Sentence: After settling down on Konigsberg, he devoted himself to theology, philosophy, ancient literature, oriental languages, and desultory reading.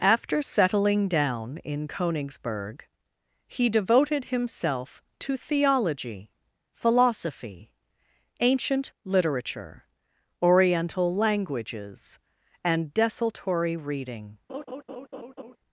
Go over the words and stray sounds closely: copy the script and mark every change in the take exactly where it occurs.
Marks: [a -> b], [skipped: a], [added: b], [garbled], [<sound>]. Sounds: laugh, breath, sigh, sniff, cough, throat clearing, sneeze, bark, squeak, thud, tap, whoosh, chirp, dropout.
After settling down [on -> in] Konigsberg, he devoted himself to theology, philosophy, ancient literature, oriental languages, and desultory reading. [laugh]